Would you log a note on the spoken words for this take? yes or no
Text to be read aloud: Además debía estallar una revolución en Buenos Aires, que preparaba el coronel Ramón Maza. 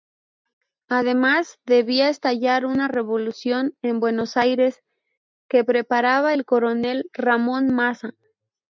no